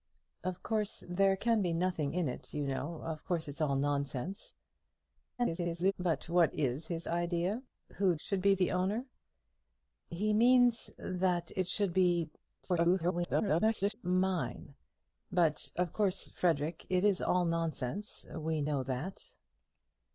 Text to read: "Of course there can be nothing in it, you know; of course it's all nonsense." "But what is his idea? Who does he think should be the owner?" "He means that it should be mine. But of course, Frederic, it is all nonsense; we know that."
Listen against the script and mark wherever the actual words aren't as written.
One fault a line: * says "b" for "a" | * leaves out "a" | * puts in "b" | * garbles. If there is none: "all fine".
* garbles
* leaves out "does he think"
* garbles